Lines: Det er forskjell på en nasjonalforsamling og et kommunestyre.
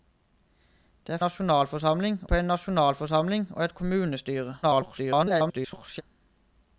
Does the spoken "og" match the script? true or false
true